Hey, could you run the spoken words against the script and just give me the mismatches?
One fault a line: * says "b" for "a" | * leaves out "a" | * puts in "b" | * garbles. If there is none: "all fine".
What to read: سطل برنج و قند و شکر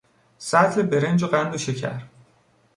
all fine